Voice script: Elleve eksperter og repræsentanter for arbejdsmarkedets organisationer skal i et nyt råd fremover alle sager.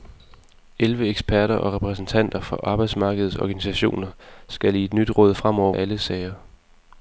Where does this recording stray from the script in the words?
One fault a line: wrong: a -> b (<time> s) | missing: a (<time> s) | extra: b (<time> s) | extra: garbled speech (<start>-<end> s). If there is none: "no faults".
no faults